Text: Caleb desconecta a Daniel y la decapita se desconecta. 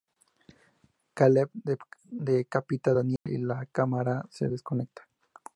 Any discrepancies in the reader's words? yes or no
yes